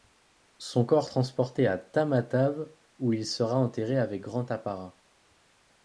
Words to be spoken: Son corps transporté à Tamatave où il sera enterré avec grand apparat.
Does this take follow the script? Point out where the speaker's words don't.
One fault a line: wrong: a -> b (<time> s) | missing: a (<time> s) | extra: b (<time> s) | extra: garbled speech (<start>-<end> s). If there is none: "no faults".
no faults